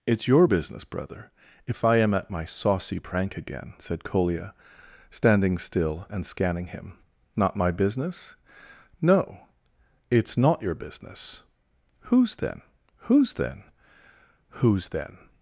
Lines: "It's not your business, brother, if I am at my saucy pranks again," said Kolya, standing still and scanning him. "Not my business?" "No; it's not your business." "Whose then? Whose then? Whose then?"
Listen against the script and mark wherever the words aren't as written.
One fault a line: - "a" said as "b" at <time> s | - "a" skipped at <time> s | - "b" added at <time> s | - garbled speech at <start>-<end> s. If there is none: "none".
- "not" skipped at 0.3 s
- "pranks" said as "prank" at 3.0 s